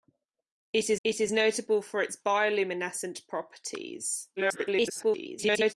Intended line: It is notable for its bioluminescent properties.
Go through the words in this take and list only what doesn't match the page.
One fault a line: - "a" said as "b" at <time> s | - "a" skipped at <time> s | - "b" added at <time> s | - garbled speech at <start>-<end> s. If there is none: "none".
- "it is" added at 1.0 s
- garbled speech at 4.4-5.7 s